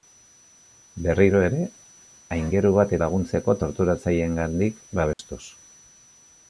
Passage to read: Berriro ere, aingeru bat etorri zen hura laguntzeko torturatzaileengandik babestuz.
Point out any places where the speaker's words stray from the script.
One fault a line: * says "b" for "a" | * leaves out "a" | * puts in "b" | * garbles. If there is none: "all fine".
* leaves out "etorri zen hura"